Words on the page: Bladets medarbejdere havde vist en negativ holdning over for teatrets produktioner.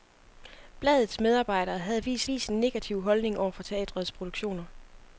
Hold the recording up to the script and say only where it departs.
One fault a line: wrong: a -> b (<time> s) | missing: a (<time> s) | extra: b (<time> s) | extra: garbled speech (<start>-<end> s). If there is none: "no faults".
extra: vist (2.2 s)